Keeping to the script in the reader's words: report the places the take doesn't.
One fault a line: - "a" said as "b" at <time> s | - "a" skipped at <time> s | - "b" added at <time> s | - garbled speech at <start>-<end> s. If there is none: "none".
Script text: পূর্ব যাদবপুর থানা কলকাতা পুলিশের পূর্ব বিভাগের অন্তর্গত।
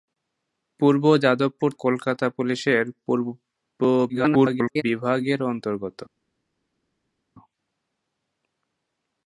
- "থানা" skipped at 1.7 s
- garbled speech at 4.1-4.8 s